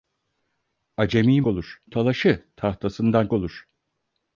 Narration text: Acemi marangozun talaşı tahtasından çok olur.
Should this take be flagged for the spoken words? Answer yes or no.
yes